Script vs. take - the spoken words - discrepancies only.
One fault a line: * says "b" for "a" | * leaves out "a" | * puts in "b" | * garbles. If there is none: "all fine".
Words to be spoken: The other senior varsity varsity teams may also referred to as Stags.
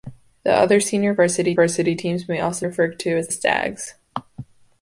all fine